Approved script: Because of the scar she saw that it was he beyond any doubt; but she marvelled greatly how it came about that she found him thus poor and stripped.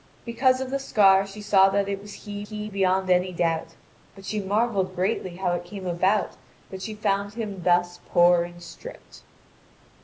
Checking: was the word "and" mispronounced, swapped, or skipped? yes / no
no